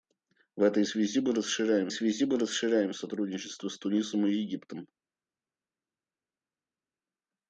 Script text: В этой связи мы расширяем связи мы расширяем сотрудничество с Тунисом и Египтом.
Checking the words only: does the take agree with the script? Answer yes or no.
yes